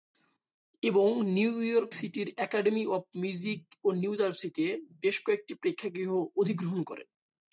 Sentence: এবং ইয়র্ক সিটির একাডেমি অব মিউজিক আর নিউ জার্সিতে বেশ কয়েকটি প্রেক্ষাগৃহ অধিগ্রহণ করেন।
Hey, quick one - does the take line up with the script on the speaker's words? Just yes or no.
no